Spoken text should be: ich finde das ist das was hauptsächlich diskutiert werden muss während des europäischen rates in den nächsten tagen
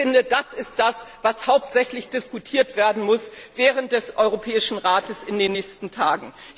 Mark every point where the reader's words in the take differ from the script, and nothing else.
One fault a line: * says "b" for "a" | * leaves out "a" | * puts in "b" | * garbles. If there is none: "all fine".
all fine